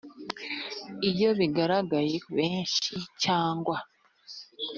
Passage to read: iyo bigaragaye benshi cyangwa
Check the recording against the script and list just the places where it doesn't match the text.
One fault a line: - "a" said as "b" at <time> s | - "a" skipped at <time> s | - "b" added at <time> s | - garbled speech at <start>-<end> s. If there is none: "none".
none